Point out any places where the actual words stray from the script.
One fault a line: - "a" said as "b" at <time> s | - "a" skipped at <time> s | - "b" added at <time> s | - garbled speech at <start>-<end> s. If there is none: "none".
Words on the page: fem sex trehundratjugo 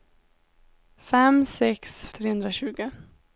none